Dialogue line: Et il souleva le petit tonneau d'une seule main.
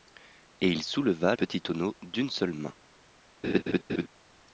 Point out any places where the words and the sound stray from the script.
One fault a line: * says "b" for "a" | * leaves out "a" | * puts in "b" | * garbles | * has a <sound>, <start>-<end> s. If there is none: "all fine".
* leaves out "le"
* has a laugh, 3.4-4.1 s